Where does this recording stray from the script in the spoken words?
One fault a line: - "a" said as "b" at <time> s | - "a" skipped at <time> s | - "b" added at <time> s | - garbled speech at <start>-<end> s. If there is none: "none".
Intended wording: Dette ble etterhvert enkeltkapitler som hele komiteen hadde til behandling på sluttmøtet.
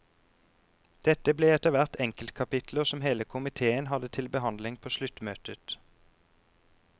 none